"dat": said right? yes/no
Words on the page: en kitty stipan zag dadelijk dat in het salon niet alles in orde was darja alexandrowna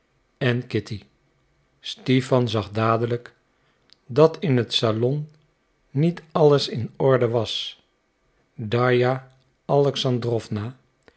yes